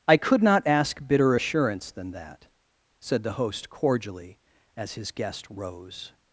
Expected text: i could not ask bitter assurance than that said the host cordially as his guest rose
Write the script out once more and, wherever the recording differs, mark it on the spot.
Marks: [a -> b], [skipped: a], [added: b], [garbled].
i could not ask bitter assurance than that said the host cordially as his guest rose